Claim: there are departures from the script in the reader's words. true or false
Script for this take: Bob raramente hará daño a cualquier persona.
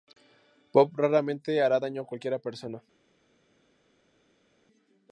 false